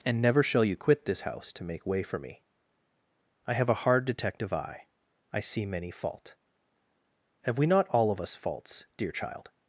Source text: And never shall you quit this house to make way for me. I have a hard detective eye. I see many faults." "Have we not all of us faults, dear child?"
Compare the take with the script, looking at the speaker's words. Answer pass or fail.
fail